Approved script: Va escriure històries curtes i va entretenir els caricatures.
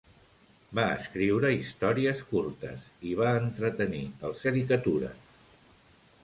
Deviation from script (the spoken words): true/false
false